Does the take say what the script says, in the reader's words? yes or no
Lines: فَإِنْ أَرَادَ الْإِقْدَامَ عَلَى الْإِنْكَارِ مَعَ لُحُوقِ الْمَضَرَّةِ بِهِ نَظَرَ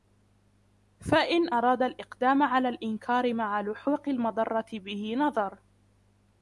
yes